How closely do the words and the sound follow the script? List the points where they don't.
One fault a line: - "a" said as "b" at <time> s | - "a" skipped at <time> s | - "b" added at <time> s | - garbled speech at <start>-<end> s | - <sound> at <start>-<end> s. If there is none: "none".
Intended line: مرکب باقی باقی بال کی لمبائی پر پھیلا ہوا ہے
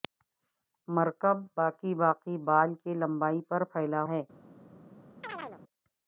- "ہوا" skipped at 4.0 s
- chirp at 5.2-5.6 s